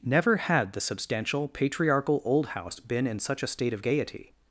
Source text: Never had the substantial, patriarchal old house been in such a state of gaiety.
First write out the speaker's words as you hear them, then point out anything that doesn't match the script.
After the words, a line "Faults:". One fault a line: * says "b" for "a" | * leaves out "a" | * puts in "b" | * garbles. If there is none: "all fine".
Never had the substantial, patriarchal old house been in such a state of gaiety.
Faults:
all fine